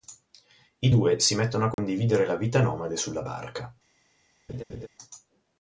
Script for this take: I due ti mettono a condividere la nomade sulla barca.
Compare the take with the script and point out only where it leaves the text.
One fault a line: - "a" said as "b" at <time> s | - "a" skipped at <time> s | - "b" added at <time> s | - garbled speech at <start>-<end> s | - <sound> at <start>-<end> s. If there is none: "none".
- "ti" said as "si" at 1.2 s
- dropout at 1.7-1.8 s
- "vita" added at 2.4 s
- laugh at 4.5-4.9 s